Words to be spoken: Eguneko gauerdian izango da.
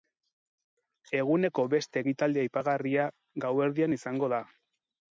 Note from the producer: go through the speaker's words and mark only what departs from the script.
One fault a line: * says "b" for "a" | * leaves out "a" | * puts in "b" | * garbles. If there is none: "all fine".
* puts in "beste ekitaldi aipagarria"